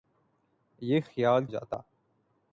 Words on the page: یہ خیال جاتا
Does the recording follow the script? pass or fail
pass